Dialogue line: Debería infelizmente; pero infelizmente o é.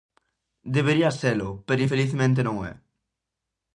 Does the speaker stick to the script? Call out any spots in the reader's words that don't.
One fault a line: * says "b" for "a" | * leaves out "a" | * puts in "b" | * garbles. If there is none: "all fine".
* says "selo" for "infelizmente"
* puts in "non"